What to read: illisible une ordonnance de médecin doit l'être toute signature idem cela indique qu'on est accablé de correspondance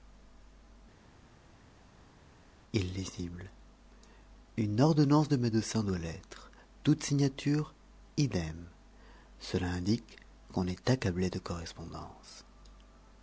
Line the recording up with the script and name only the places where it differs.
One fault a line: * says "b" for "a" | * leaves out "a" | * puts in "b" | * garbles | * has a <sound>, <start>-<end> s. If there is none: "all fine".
all fine